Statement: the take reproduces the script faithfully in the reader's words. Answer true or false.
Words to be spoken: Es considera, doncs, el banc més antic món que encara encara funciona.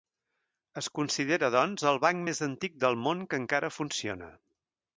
false